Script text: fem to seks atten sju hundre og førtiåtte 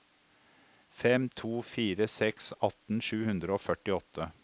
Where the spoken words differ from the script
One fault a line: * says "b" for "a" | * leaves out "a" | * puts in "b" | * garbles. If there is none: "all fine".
* puts in "fire"